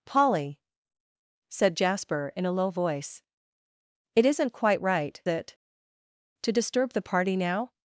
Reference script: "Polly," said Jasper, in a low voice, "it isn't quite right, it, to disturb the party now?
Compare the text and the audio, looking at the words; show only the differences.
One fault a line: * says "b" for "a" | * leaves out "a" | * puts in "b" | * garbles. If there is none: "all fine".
all fine